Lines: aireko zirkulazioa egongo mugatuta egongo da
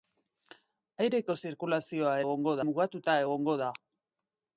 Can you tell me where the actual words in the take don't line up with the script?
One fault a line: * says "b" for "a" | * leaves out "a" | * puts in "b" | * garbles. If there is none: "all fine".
all fine